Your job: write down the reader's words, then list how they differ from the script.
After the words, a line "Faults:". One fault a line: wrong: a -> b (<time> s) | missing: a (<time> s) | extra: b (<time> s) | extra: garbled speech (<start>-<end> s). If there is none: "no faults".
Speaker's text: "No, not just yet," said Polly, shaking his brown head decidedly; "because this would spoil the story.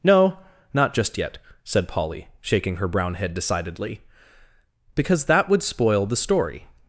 "No, not just yet," said Polly, shaking her brown head decidedly; "because that would spoil the story.
Faults:
wrong: his -> her (2.8 s)
wrong: this -> that (5.3 s)